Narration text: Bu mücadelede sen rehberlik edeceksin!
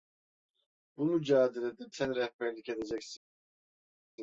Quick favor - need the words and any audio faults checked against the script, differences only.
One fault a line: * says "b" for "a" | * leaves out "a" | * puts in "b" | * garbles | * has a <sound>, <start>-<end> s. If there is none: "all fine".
all fine